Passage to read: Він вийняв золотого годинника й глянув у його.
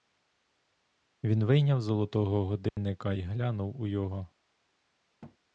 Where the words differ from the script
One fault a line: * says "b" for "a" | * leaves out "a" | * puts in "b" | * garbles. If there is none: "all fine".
all fine